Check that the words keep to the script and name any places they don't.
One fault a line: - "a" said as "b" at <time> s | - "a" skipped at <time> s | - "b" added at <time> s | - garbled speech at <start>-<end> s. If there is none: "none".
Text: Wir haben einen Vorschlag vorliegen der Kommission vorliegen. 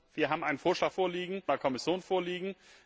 none